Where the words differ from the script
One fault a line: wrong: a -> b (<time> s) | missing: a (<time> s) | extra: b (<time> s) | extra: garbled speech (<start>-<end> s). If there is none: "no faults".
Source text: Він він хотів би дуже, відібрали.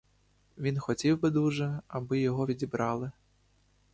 missing: він (0.8 s)
extra: аби його (1.9 s)